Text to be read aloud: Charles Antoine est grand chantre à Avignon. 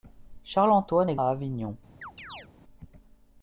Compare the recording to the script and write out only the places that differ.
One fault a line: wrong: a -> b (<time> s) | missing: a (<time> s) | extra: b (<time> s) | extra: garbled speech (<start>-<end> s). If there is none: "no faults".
missing: grand chantre (1.2 s)